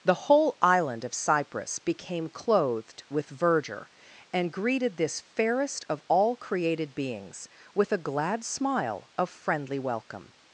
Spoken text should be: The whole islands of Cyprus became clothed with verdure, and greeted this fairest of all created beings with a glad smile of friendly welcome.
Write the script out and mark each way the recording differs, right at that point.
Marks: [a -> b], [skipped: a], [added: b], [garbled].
The whole [islands -> island] of Cyprus became clothed with verdure, and greeted this fairest of all created beings with a glad smile of friendly welcome.